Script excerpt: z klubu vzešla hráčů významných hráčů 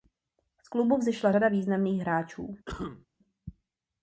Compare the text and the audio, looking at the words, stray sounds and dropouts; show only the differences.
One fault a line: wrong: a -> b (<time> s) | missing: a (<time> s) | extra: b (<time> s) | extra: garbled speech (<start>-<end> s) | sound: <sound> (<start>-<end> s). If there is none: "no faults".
wrong: hráčů -> řada (1.3 s)
sound: cough (2.7-3.1 s)